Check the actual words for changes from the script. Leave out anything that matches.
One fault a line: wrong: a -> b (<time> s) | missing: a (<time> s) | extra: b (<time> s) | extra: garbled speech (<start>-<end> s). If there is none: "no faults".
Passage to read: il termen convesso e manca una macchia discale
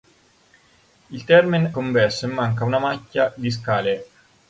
no faults